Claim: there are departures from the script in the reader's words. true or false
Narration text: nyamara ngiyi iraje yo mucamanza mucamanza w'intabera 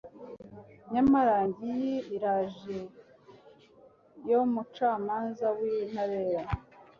true